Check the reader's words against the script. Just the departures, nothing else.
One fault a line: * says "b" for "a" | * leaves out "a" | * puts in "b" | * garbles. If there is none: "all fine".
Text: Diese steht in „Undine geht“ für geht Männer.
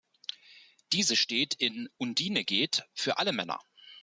* says "alle" for "geht"